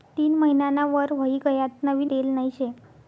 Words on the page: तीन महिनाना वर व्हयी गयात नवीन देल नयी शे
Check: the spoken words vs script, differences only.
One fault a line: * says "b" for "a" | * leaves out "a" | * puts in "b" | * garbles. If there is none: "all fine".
all fine